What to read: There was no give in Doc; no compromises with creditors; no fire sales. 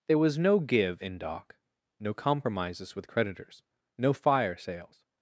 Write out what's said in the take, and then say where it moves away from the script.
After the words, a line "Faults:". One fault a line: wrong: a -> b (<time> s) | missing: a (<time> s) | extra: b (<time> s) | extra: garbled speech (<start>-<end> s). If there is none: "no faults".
There was no give in Doc; no compromises with creditors; no fire sales.
Faults:
no faults